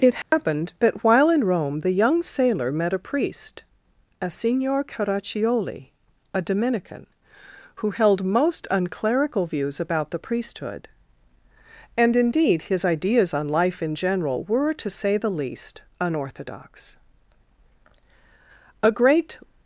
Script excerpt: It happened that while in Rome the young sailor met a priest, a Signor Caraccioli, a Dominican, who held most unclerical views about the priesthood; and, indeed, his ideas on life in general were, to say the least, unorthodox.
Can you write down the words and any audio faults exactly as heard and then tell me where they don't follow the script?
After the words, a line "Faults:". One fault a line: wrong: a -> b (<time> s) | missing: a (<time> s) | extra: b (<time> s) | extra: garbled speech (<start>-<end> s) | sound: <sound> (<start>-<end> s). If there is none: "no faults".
It happened that while in Rome the young sailor met a priest, a Signor Caraccioli, a Dominican, who held most unclerical views about the priesthood; and, indeed, his ideas on life in general were, to say the least, unorthodox. A great
Faults:
sound: dropout (0.2-0.3 s)
extra: A great (18.8 s)